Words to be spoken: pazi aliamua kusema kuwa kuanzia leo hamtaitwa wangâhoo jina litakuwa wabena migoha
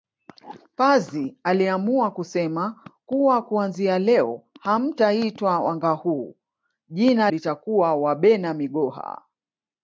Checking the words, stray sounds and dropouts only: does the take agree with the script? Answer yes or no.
yes